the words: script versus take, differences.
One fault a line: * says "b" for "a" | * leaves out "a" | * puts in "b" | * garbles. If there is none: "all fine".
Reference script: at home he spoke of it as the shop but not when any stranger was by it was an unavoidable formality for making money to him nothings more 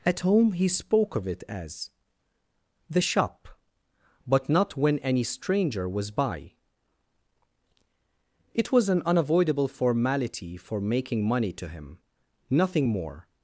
* says "nothing" for "nothings"